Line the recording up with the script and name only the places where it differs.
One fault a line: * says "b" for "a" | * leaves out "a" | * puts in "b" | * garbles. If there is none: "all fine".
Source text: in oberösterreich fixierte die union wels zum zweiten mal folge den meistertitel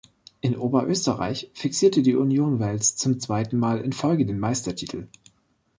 * puts in "in"